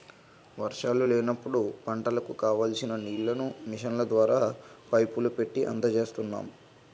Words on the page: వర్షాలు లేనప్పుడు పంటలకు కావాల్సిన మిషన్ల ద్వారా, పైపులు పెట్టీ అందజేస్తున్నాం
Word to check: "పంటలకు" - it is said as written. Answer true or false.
true